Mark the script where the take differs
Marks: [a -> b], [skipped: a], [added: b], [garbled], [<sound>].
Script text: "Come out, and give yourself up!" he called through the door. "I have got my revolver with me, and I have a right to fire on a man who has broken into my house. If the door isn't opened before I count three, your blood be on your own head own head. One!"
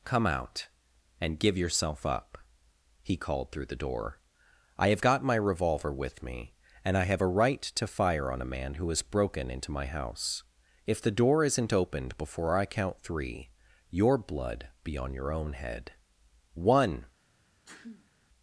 "Come out, and give yourself up!" he called through the door. "I have got my revolver with me, and I have a right to fire on a man who has broken into my house. If the door isn't opened before I count three, your blood be on your own head [skipped: own head.] One!" [sneeze]